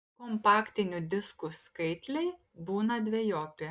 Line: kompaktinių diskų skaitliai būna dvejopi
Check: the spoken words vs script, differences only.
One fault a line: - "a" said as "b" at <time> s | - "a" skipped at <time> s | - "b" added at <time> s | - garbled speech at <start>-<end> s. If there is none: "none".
none